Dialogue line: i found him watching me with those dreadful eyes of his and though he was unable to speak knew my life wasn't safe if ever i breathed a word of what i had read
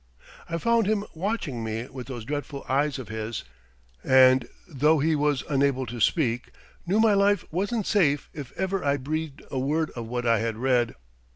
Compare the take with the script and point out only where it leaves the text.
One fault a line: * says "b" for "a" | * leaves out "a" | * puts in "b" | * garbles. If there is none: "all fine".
all fine